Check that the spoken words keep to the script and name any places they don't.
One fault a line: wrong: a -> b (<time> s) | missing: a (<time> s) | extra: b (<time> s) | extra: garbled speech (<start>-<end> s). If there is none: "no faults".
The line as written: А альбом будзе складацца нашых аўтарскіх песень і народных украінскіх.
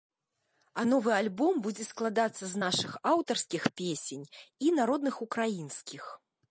extra: новы (0.8 s)
extra: з (2.5 s)